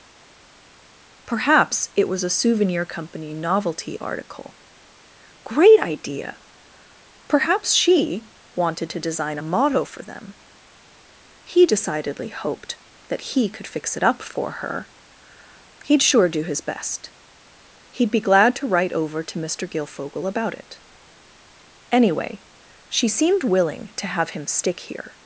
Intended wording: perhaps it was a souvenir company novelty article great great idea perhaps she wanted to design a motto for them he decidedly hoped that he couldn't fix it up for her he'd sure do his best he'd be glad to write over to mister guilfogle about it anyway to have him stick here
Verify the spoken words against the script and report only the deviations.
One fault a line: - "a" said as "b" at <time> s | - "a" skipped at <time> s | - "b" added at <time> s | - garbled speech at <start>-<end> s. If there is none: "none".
- "great" skipped at 5.8 s
- "couldn't" said as "could" at 13.5 s
- "she seemed willing" added at 22.9 s